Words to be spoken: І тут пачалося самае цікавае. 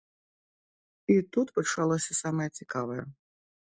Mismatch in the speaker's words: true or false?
false